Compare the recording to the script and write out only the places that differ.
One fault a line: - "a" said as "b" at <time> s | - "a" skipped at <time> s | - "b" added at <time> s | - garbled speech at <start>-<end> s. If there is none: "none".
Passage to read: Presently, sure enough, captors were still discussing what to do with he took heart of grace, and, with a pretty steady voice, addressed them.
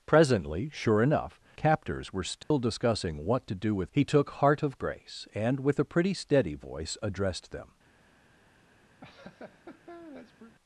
none